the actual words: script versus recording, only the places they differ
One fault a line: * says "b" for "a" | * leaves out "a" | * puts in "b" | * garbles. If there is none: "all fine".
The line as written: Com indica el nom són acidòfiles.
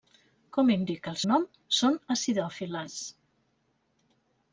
all fine